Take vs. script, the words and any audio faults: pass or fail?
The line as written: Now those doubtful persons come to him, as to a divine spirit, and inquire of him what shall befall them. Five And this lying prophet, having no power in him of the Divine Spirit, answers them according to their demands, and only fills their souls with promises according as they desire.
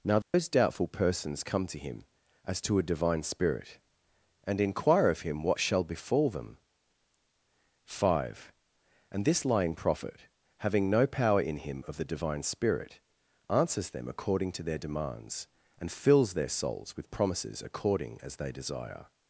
fail